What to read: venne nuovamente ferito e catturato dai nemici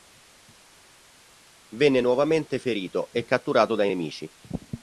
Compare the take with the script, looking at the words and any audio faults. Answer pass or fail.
pass